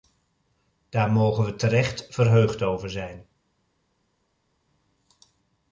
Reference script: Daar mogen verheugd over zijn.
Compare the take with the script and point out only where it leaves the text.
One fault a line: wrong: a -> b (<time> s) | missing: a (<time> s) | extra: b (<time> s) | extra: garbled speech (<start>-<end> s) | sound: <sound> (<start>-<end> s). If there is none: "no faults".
extra: we terecht (1.4 s)